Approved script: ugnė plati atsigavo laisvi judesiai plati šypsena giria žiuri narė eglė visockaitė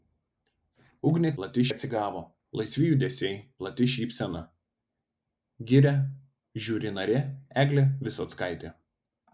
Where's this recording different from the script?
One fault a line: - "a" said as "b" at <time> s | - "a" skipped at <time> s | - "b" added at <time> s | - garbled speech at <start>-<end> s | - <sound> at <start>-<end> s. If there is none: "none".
none